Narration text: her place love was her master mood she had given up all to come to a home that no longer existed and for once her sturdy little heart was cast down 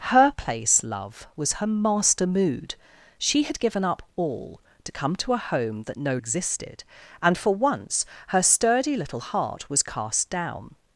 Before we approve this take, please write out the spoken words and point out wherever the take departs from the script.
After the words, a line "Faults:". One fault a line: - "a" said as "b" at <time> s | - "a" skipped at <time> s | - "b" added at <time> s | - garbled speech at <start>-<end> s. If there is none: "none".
her place love was her master mood she had given up all to come to a home that no existed and for once her sturdy little heart was cast down
Faults:
- "longer" skipped at 6.2 s